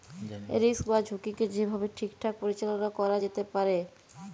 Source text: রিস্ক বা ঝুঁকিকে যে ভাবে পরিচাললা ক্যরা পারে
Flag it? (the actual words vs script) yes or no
yes